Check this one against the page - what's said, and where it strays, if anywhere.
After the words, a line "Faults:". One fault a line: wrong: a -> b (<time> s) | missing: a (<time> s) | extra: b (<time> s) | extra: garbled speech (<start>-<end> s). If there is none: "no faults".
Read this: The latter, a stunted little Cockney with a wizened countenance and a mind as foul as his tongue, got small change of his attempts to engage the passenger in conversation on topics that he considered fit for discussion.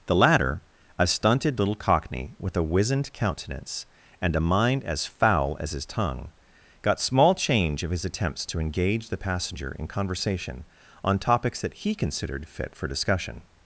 The latter, a stunted little Cockney with a wizened countenance and a mind as foul as his tongue, got small change of his attempts to engage the passenger in conversation on topics that he considered fit for discussion.
Faults:
no faults